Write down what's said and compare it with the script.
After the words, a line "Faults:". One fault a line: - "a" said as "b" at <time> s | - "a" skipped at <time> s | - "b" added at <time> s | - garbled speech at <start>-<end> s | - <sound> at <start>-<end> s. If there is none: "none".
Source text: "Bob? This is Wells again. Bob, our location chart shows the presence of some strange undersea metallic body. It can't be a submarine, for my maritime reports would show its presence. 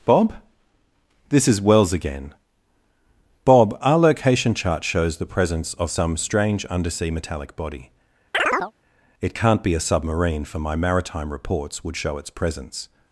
"Bob? This is Wells again. Bob, our location chart shows the presence of some strange undersea metallic body. It can't be a submarine, for my maritime reports would show its presence.
Faults:
- chirp at 8.3-8.7 s